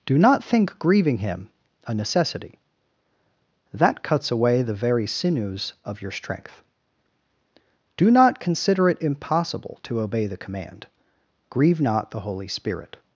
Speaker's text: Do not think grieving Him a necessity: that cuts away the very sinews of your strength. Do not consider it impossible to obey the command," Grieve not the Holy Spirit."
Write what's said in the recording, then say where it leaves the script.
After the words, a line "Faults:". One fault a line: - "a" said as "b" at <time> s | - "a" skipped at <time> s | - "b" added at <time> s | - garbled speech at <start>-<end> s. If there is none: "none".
Do not think grieving Him a necessity: that cuts away the very sinews of your strength. Do not consider it impossible to obey the command," Grieve not the Holy Spirit."
Faults:
none